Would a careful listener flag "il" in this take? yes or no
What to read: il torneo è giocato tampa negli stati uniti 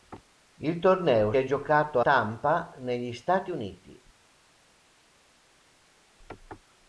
no